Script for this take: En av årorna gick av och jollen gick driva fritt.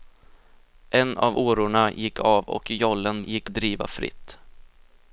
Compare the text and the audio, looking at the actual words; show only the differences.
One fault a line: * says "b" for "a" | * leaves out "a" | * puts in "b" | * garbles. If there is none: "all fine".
all fine